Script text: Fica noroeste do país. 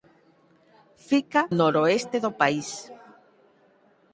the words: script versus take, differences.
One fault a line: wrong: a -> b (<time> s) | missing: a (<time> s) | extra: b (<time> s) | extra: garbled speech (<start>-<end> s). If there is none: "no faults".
no faults